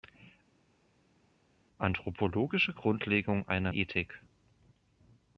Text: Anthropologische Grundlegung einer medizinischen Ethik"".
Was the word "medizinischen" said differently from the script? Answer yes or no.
yes